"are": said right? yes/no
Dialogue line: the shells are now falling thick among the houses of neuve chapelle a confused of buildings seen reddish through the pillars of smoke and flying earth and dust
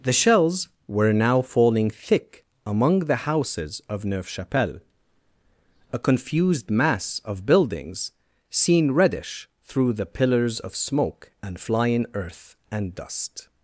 no